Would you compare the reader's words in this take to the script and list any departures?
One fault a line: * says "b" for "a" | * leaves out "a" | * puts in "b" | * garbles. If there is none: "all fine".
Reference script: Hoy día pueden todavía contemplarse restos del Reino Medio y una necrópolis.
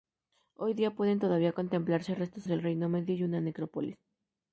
all fine